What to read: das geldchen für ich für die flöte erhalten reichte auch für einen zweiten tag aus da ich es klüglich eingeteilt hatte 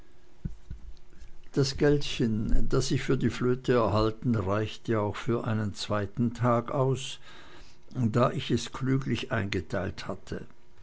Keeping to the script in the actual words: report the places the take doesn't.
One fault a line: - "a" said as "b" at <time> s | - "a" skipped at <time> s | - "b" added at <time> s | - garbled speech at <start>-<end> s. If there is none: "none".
- "für" said as "das" at 2.7 s